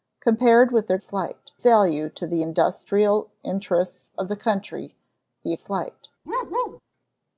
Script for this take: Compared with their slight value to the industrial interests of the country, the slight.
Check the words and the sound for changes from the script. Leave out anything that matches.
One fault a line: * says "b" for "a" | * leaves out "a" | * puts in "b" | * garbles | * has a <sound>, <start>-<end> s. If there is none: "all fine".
* has a bark, 6.3-6.8 s